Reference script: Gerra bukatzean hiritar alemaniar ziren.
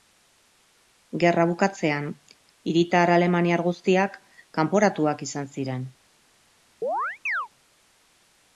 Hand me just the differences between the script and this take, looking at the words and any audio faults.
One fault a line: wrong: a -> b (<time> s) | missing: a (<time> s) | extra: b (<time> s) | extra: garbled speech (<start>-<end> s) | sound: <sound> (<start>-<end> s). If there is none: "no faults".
extra: guztiak kanporatuak izan (3.7 s)
sound: chirp (6.8-7.5 s)